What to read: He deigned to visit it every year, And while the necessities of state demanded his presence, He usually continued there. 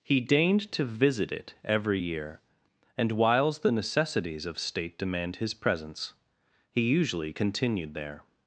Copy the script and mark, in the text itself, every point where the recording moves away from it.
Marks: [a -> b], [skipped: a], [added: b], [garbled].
He deigned to visit it every year, And [while -> whiles] the necessities of state [demanded -> demand] his presence, He usually continued there.